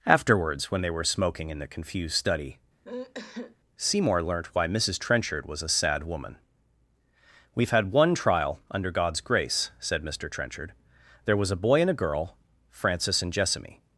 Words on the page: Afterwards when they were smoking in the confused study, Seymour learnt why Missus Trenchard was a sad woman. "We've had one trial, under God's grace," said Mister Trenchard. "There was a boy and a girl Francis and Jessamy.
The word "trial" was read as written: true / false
true